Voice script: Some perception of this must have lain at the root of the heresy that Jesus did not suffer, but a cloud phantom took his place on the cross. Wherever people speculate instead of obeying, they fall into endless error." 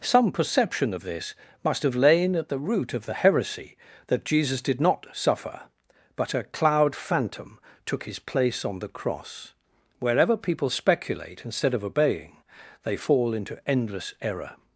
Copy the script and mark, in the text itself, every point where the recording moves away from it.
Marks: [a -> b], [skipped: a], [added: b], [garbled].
Some perception of this must have lain at the root of the heresy that Jesus did not suffer, but a cloud phantom took his place on the cross. Wherever people speculate instead of obeying, they fall into endless error."